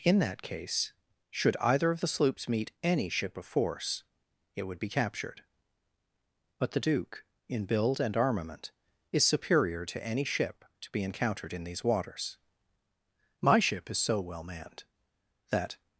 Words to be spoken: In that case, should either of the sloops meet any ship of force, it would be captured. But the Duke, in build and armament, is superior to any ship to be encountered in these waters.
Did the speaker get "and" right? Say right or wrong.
right